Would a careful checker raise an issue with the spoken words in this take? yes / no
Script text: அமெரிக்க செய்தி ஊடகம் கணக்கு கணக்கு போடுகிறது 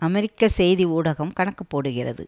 yes